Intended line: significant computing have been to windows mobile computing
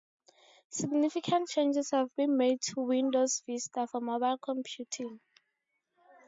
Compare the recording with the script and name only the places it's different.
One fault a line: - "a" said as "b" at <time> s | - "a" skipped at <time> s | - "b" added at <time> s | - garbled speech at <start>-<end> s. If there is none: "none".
- "computing" said as "changes" at 1.5 s
- "made" added at 2.4 s
- "vista for" added at 3.4 s